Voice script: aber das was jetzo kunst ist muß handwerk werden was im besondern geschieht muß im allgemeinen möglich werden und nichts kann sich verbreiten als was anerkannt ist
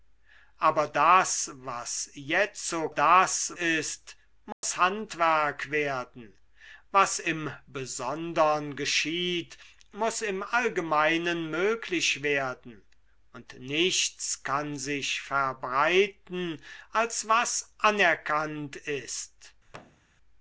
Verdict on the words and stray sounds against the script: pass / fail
fail